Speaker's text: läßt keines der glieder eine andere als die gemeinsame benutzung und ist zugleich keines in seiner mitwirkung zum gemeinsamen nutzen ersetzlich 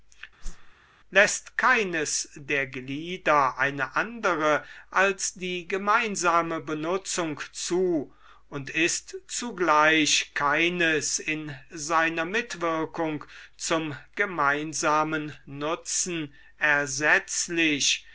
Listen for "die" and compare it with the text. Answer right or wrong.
right